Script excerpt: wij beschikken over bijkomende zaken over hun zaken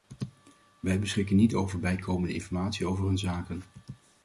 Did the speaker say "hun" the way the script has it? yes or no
yes